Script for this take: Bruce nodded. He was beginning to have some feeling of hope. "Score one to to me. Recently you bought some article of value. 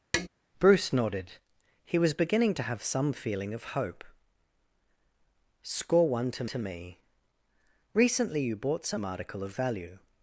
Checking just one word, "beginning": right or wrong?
right